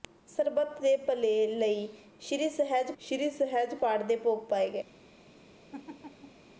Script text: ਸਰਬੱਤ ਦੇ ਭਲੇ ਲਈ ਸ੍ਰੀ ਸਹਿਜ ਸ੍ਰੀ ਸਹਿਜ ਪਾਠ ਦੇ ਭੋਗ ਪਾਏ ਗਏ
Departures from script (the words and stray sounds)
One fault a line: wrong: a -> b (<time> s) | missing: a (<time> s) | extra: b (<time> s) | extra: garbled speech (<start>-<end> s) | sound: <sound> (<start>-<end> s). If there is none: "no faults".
sound: laugh (5.7-6.5 s)